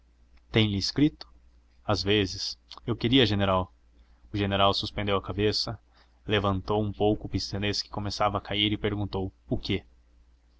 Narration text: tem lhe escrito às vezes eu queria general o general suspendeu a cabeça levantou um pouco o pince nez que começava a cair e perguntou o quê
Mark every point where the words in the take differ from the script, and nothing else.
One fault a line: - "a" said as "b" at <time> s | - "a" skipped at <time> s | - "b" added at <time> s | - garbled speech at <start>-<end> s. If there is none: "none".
none